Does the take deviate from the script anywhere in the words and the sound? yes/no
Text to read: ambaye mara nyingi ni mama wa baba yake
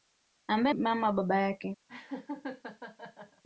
yes